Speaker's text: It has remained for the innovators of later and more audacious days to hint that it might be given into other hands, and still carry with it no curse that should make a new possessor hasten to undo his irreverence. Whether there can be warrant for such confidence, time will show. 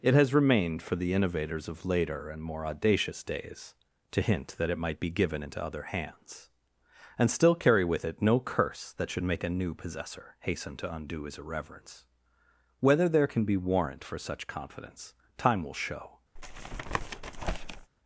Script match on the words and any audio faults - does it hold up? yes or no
no